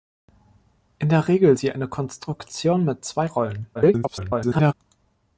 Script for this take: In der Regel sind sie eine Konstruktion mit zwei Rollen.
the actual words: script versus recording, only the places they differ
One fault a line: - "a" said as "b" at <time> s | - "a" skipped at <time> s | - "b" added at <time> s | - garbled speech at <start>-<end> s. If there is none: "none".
- "sind" skipped at 1.6 s
- garbled speech at 3.7-4.7 s